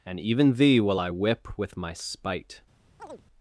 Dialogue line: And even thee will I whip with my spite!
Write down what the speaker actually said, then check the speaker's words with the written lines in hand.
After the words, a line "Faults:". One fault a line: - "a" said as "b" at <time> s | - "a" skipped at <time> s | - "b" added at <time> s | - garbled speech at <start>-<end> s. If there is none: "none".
And even thee will I whip with my spite!
Faults:
none